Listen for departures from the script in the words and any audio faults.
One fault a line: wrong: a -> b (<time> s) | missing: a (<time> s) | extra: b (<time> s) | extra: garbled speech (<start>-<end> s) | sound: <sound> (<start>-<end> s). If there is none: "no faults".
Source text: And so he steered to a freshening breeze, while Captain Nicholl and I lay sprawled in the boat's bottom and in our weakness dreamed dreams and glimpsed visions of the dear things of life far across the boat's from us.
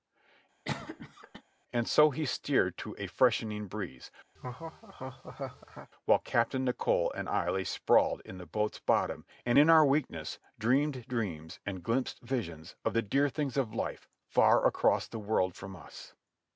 sound: cough (0.6-1.4 s)
sound: laugh (4.4-5.9 s)
wrong: boat's -> world (15.2 s)